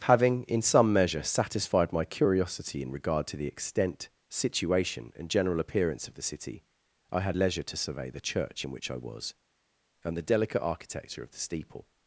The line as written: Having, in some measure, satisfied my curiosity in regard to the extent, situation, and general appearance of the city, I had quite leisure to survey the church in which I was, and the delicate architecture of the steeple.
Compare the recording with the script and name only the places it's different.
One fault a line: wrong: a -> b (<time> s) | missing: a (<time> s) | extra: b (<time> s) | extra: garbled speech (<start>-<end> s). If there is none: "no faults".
missing: quite (7.4 s)